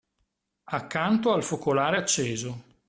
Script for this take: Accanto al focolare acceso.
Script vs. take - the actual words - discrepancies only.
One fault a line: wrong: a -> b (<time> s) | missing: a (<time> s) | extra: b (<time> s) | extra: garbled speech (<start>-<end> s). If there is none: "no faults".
no faults